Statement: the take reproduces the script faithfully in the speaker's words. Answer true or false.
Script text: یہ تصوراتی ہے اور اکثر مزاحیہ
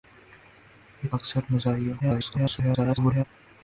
false